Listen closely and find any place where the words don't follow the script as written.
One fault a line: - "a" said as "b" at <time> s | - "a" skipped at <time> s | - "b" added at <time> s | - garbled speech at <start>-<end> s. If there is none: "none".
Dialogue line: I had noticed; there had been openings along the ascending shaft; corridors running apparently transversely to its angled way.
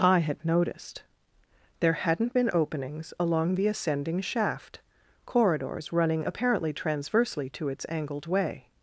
- "had" said as "hadn't" at 1.9 s